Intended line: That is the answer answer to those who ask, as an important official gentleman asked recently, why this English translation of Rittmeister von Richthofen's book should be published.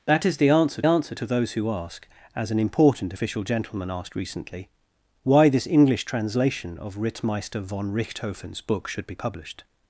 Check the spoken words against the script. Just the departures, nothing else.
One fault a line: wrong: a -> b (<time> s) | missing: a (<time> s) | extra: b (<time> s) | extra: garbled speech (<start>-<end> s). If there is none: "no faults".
no faults